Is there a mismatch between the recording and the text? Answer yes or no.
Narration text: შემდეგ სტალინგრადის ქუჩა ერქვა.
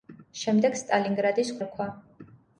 yes